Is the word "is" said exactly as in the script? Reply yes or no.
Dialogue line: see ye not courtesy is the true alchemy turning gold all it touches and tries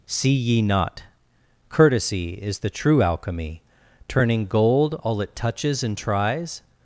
yes